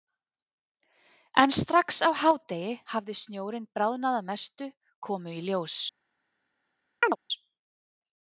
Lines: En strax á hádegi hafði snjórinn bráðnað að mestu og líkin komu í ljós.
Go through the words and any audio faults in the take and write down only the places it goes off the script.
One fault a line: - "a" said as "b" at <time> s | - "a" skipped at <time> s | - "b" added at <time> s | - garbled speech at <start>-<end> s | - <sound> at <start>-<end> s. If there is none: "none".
- "og líkin" skipped at 4.7 s
- chirp at 7.0-7.2 s